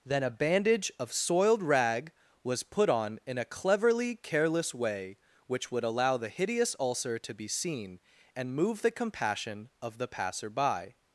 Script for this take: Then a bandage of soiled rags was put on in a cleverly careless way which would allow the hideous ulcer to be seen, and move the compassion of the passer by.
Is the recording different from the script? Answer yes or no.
yes